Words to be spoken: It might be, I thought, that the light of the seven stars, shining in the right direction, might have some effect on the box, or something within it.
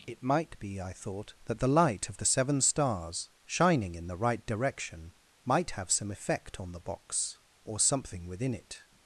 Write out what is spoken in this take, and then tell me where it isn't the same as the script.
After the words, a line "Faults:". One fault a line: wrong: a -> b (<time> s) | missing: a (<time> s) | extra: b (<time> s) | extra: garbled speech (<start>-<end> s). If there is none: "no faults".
It might be, I thought, that the light of the seven stars, shining in the right direction, might have some effect on the box, or something within it.
Faults:
no faults